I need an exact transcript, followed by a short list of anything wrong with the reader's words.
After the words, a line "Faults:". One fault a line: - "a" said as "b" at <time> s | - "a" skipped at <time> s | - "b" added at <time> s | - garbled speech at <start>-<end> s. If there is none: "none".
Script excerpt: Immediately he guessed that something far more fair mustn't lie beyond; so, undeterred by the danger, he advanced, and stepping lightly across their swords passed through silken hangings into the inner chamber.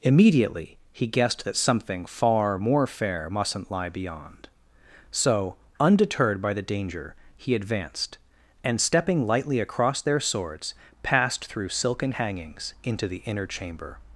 Immediately he guessed that something far more fair mustn't lie beyond; so, undeterred by the danger, he advanced, and stepping lightly across their swords passed through silken hangings into the inner chamber.
Faults:
none